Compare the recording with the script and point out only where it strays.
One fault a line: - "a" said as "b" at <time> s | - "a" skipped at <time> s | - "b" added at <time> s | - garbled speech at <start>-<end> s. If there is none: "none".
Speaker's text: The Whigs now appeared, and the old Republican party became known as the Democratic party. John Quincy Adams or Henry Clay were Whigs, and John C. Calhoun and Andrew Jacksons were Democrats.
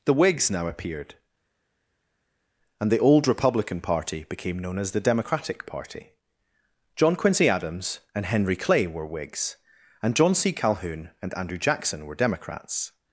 - "or" said as "and" at 8.1 s
- "Jacksons" said as "Jackson" at 11.6 s